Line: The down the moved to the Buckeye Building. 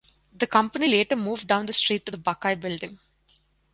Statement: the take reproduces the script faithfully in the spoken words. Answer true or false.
false